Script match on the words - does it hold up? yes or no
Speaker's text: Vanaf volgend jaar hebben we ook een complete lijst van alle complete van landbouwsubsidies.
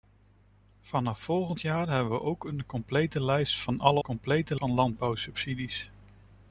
yes